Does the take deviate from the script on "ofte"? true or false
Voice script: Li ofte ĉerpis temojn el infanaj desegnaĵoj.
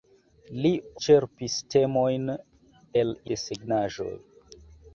true